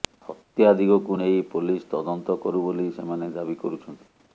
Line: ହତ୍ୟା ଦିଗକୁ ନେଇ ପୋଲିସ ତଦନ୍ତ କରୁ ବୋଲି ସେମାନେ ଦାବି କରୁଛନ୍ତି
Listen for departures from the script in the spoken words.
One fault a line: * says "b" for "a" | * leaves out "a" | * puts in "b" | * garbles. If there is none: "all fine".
all fine